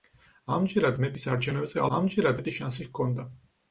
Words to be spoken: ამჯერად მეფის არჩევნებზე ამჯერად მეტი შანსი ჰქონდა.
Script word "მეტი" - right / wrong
right